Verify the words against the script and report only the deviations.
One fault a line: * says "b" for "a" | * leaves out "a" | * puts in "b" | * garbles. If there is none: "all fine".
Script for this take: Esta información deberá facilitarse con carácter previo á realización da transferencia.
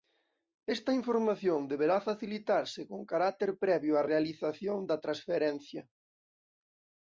all fine